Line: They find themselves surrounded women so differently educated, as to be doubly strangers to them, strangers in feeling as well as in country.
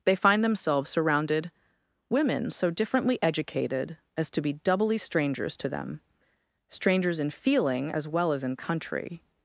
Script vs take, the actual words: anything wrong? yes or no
no